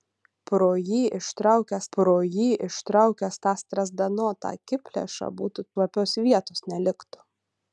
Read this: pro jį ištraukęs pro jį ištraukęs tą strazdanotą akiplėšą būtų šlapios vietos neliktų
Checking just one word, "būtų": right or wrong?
right